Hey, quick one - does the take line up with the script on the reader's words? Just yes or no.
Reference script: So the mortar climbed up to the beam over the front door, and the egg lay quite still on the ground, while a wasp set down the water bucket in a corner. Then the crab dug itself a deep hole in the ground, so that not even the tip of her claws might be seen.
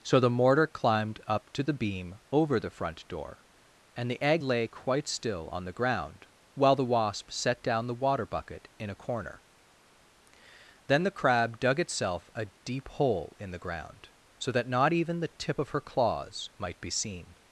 no